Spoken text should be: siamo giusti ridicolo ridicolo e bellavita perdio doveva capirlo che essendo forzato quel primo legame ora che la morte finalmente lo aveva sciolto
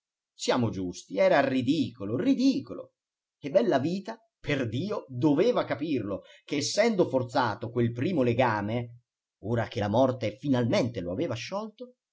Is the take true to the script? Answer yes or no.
no